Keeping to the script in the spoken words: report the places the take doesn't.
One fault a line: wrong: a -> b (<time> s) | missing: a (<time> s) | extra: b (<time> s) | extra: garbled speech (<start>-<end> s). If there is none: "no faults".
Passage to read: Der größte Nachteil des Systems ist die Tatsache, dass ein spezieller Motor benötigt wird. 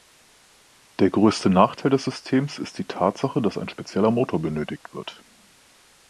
no faults